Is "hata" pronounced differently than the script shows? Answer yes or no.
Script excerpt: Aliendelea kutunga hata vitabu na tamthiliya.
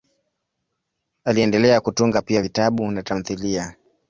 yes